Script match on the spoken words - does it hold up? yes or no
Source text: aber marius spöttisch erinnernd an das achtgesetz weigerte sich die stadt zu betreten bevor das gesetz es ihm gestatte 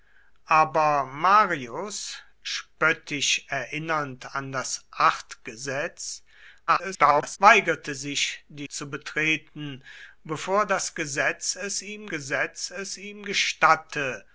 no